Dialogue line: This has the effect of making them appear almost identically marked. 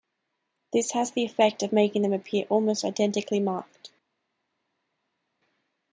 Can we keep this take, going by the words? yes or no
yes